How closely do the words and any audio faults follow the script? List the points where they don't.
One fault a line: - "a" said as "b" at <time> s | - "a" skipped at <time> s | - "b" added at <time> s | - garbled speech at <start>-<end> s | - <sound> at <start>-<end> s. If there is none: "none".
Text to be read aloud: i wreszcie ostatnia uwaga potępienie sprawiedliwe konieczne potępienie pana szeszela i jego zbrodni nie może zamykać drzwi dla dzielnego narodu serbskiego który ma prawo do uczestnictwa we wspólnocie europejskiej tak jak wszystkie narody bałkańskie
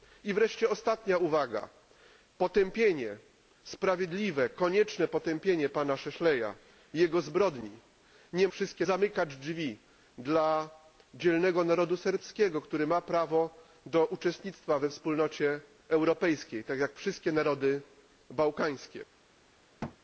- "może" said as "wszystkie" at 8.5 s
- thud at 19.8-20.0 s